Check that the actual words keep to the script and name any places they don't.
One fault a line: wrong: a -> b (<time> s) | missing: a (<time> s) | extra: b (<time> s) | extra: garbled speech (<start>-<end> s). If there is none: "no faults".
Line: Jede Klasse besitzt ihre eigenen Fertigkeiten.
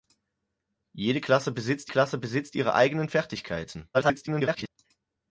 extra: Klasse besitzt (1.9 s)
extra: garbled speech (3.9-4.7 s)